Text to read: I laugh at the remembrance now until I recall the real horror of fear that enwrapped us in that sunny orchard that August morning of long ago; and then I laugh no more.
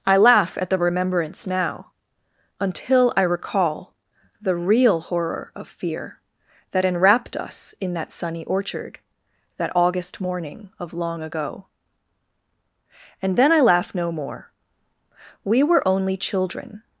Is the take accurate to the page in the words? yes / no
no